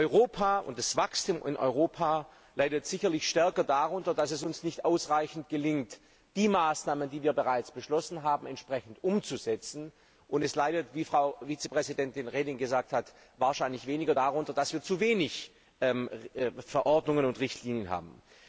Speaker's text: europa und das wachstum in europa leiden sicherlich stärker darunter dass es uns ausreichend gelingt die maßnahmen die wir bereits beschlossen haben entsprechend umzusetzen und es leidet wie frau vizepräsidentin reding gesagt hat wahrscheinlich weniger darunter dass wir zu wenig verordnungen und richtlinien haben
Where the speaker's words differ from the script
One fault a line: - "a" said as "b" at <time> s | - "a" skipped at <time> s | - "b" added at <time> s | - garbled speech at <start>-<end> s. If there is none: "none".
- "nicht" added at 4.6 s